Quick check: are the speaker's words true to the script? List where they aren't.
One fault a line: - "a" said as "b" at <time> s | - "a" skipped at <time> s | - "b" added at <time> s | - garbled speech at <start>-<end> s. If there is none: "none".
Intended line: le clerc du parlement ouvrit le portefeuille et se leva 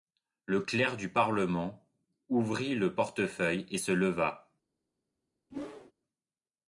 none